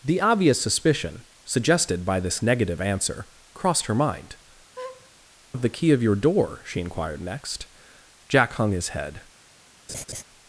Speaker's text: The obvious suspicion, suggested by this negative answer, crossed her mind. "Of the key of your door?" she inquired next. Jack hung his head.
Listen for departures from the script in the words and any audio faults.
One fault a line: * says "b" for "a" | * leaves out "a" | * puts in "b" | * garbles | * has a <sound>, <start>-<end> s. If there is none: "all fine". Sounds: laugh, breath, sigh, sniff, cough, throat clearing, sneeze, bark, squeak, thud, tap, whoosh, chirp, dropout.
* has a laugh, 4.8-5.1 s
* has a laugh, 9.9-10.2 s